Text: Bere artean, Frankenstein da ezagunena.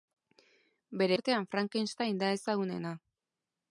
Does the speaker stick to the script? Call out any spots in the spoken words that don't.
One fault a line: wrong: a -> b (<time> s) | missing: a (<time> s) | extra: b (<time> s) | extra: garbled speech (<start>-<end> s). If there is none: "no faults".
no faults